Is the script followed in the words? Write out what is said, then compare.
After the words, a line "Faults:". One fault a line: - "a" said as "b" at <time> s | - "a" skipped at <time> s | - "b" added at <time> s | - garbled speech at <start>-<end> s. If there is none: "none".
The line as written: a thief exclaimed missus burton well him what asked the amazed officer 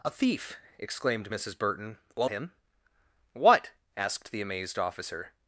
a thief exclaimed missus burton well him what asked the amazed officer
Faults:
none